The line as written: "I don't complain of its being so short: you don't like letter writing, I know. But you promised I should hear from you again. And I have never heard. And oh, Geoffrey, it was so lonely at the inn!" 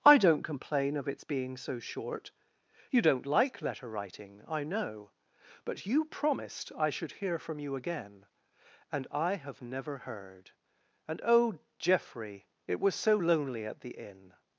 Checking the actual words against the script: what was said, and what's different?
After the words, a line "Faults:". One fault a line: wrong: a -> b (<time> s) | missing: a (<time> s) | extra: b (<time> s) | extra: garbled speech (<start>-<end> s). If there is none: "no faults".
"I don't complain of its being so short: you don't like letter writing, I know. But you promised I should hear from you again. And I have never heard. And oh, Geoffrey, it was so lonely at the inn!"
Faults:
no faults